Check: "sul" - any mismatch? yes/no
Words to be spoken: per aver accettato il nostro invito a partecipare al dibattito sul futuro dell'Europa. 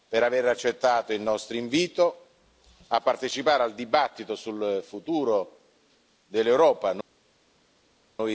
no